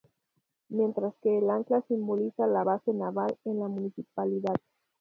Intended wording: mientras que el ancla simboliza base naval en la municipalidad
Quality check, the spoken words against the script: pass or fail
fail